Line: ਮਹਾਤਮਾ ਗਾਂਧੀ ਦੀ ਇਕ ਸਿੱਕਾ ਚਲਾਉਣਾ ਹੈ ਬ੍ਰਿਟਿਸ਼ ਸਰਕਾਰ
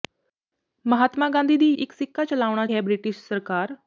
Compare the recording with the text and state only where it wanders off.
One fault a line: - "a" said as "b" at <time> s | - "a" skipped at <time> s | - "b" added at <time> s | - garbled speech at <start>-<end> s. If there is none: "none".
none